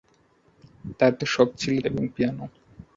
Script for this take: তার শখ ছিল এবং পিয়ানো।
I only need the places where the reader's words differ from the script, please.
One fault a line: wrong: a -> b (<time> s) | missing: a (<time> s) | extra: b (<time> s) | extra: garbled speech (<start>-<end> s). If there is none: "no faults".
no faults